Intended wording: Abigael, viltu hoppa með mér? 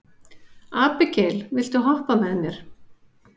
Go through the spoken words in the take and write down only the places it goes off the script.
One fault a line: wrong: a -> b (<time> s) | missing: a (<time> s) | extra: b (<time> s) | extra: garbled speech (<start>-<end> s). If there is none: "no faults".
no faults